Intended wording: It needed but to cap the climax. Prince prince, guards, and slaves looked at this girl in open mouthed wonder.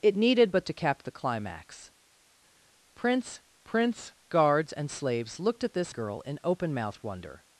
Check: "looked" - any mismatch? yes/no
no